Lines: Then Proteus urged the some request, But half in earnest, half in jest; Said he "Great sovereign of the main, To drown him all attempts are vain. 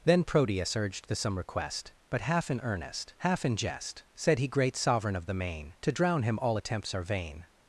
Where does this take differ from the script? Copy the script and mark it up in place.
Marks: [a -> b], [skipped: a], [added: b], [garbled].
Then Proteus urged the some request, But half in earnest, half in jest; Said he "Great sovereign of the main, To drown him all attempts are vain.